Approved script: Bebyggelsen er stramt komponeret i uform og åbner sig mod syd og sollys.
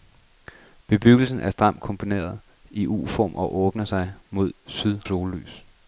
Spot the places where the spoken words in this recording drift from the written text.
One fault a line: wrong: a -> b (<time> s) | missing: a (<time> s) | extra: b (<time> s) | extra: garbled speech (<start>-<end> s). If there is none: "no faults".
missing: og (5.0 s)